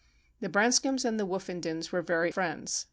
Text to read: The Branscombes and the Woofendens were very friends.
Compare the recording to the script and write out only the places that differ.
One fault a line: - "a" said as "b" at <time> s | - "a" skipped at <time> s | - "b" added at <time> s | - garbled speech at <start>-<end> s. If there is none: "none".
none